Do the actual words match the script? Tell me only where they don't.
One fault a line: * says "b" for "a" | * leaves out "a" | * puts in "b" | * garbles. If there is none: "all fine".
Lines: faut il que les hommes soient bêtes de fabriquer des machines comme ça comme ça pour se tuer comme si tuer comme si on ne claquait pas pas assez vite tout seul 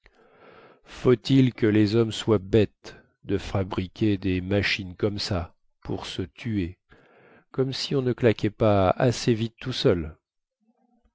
* leaves out "comme ça"
* leaves out "tuer comme si"
* leaves out "pas"